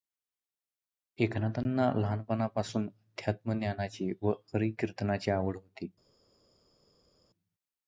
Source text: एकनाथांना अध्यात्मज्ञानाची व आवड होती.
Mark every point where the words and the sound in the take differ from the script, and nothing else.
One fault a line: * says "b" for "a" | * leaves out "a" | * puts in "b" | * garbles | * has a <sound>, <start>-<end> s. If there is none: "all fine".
* puts in "लहानपणापासून"
* puts in "हरिकीर्तनाची"